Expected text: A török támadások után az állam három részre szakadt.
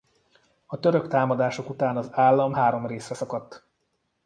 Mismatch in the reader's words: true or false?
false